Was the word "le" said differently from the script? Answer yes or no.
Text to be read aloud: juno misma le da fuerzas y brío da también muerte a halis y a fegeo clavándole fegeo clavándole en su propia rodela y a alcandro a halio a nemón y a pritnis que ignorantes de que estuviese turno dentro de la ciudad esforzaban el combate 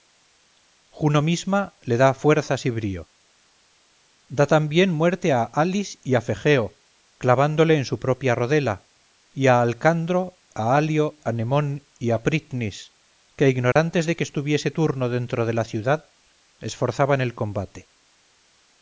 no